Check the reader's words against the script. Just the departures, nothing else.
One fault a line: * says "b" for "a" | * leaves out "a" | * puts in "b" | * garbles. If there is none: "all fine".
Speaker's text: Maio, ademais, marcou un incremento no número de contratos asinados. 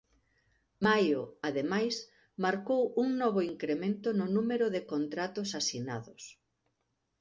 * puts in "novo"